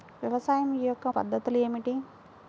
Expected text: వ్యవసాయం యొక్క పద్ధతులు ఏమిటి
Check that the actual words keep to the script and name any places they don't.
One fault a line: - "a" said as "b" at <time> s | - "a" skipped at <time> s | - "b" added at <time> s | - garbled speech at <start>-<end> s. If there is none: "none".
none